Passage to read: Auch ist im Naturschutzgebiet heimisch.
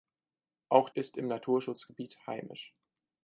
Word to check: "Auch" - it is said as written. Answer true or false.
true